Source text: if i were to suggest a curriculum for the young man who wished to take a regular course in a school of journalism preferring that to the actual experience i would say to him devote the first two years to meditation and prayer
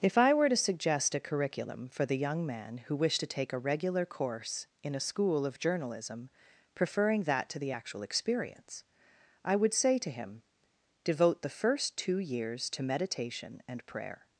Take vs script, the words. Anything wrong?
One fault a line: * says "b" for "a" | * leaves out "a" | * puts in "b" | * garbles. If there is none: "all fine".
all fine